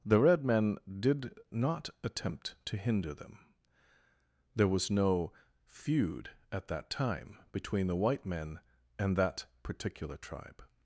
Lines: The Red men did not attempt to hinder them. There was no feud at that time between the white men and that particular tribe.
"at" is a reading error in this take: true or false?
false